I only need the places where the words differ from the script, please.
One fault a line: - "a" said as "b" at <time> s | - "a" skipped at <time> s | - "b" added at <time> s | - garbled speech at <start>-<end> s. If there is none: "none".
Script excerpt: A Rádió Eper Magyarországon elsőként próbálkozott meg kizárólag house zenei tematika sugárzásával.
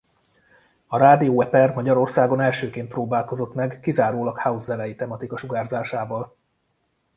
none